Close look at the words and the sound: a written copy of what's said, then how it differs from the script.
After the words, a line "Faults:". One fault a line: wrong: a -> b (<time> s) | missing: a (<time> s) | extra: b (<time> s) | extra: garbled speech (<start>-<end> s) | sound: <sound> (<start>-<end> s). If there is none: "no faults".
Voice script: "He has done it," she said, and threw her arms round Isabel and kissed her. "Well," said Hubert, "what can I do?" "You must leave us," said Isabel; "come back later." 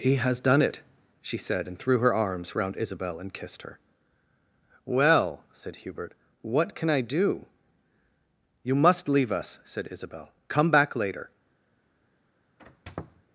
"He has done it," she said, and threw her arms round Isabel and kissed her. "Well," said Hubert, "what can I do?" "You must leave us," said Isabel; "come back later."
Faults:
sound: squeak (12.6-13.2 s)